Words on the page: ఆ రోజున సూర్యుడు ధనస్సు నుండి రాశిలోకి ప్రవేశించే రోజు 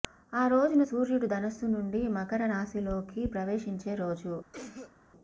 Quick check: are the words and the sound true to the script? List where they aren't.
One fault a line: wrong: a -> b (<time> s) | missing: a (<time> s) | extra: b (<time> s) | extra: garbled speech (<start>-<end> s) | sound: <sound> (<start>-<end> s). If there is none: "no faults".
extra: మకర (2.1 s)
sound: cough (4.5-5.0 s)